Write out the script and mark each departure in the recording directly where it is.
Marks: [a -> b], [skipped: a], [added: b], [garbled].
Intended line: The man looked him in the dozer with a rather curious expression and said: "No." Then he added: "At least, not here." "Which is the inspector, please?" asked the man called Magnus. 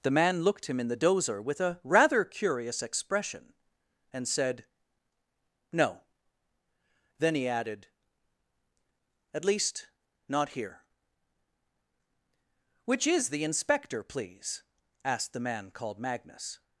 The man looked him in the dozer with a rather curious expression and said: "No." Then he added: "At least, not here." "Which is the inspector, please?" asked the man called Magnus.